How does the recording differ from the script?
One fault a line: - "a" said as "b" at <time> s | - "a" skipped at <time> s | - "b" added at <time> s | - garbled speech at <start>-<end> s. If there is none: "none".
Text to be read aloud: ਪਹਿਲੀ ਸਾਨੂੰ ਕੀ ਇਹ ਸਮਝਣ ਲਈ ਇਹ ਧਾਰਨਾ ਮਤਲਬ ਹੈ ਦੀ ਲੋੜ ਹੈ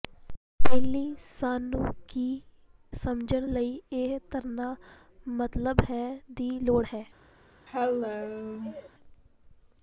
- "ਇਹ" skipped at 2.2 s